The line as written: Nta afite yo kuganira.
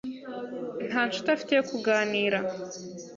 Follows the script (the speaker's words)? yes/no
no